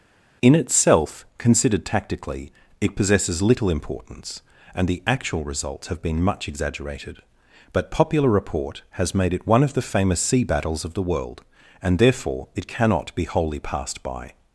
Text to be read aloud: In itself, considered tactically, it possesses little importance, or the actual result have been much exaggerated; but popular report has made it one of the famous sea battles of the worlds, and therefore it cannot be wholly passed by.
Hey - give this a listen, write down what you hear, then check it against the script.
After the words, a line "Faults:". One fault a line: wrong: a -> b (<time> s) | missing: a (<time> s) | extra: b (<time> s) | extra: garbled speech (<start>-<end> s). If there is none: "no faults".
In itself, considered tactically, it possesses little importance, and the actual results have been much exaggerated; but popular report has made it one of the famous sea battles of the world, and therefore it cannot be wholly passed by.
Faults:
wrong: or -> and (4.7 s)
wrong: result -> results (5.4 s)
wrong: worlds -> world (11.0 s)